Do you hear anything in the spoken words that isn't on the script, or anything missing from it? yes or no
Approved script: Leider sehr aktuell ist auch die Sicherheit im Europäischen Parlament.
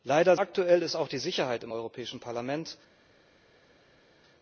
yes